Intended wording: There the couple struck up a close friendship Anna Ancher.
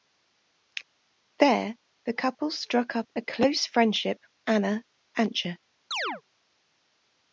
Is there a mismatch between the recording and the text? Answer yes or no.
no